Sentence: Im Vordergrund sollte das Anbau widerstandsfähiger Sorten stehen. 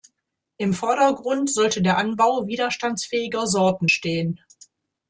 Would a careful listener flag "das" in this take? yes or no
yes